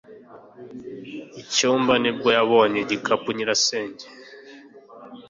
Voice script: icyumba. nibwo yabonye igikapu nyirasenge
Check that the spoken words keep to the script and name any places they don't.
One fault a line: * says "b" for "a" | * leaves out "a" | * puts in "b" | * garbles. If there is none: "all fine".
all fine